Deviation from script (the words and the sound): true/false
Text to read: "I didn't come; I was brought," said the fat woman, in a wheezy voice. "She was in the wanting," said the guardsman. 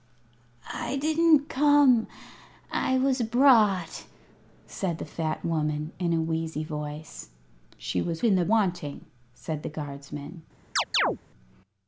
true